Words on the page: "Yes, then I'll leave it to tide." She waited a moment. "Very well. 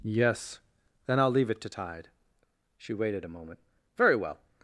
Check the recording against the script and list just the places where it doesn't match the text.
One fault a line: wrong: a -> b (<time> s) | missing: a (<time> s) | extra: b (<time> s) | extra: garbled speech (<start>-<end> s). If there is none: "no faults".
no faults